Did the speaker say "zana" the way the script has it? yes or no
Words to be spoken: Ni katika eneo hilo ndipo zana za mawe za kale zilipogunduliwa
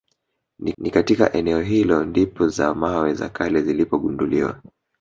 no